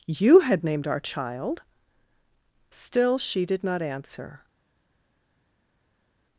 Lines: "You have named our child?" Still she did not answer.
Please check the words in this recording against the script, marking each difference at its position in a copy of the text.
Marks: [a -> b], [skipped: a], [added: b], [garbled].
"You [have -> had] named our child?" Still she did not answer.